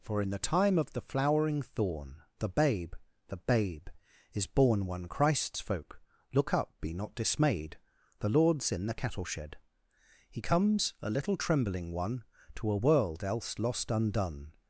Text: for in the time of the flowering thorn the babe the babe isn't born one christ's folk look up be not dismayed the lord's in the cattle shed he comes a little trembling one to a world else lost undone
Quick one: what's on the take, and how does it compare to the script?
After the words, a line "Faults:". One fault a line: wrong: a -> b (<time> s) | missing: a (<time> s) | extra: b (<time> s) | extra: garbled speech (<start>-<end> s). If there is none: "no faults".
for in the time of the flowering thorn the babe the babe is born one christ's folk look up be not dismayed the lord's in the cattle shed he comes a little trembling one to a world else lost undone
Faults:
wrong: isn't -> is (4.3 s)